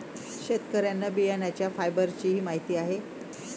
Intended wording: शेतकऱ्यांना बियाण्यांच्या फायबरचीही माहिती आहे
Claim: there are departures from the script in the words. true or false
false